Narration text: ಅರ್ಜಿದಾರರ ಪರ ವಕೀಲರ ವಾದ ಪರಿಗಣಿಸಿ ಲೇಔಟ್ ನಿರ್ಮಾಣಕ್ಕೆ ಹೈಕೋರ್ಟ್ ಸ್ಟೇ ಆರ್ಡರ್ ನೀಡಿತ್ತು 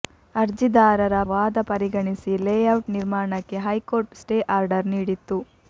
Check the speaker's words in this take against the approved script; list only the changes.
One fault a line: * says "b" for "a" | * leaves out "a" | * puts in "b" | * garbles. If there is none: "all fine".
* leaves out "ಪರ ವಕೀಲರ"